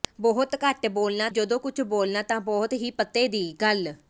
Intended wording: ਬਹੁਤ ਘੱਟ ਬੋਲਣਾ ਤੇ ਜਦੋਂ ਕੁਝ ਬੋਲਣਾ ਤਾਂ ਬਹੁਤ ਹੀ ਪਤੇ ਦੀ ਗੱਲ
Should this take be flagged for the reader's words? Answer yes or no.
yes